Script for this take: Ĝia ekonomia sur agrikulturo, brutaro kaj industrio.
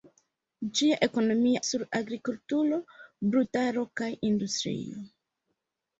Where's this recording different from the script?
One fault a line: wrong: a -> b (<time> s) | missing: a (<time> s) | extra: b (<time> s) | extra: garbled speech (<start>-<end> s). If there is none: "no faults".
no faults